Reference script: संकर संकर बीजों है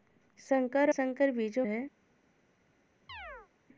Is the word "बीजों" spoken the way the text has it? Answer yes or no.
yes